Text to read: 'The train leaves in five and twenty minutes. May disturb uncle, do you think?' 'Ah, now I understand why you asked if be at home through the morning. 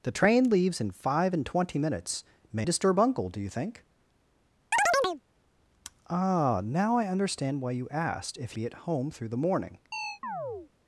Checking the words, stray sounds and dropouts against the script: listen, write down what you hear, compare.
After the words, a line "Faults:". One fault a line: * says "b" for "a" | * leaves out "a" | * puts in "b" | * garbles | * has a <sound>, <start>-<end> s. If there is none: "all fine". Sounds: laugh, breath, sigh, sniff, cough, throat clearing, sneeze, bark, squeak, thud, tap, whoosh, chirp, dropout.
'The train leaves in five and twenty minutes. May disturb uncle, do you think?' 'Ah, now I understand why you asked if be at home through the morning.
Faults:
* has a chirp, 4.7-5.2 s
* has a chirp, 9.9-10.7 s